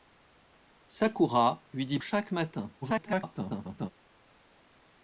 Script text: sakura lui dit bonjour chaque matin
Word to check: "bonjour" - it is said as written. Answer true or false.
false